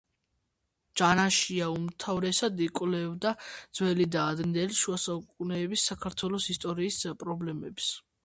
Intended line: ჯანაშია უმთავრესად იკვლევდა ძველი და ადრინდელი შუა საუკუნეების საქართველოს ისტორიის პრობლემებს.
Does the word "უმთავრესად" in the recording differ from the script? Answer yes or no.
no